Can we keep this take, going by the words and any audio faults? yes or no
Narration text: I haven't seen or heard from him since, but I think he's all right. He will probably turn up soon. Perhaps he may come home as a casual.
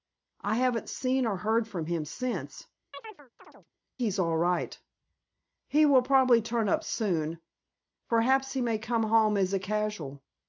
no